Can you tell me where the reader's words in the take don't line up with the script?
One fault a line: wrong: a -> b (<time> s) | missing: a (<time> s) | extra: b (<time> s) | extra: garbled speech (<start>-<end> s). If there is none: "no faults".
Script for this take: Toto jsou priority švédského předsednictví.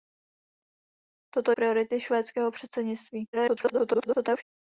missing: jsou (1.5 s)
extra: garbled speech (3.3-4.4 s)